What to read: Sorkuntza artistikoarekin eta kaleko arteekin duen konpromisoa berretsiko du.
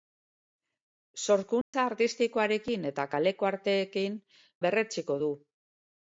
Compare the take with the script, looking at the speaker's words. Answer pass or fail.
fail